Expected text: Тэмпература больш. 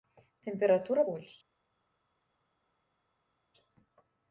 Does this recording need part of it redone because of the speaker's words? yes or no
no